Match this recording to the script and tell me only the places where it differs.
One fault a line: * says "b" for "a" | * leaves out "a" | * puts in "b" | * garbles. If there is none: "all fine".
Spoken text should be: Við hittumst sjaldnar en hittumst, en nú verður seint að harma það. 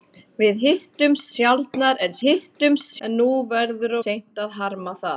all fine